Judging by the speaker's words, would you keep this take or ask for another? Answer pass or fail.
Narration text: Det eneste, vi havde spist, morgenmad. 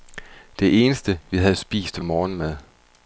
pass